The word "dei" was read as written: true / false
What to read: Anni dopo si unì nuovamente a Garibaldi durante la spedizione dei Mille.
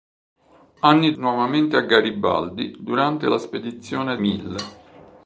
false